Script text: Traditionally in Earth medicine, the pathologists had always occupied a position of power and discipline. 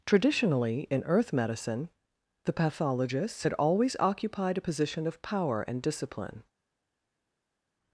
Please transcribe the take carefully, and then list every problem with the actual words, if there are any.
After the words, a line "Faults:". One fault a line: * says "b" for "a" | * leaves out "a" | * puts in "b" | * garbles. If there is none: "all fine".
Traditionally in Earth medicine, the pathologists had always occupied a position of power and discipline.
Faults:
all fine